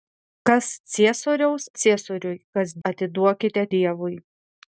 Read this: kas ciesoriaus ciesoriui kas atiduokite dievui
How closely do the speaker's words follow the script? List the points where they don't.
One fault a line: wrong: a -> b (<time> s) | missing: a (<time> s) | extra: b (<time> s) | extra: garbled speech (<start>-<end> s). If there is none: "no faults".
no faults